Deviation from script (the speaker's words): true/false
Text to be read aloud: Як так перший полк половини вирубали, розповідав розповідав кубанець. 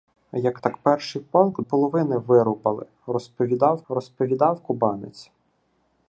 false